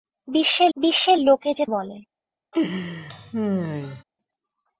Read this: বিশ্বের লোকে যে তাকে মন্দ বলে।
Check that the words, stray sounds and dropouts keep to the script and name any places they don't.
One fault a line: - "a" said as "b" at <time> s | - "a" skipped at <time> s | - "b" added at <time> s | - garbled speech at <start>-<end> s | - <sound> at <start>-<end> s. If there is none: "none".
- "বিশ্বের" added at 0.8 s
- "তাকে মন্দ" skipped at 1.7 s
- laugh at 2.5-4.0 s